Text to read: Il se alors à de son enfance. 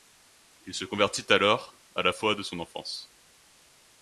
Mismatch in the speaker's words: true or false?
true